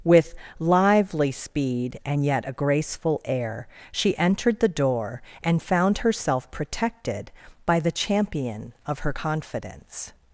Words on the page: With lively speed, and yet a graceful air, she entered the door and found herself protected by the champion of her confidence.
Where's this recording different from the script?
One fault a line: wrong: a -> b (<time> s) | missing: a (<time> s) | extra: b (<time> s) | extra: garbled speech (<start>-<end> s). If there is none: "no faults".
no faults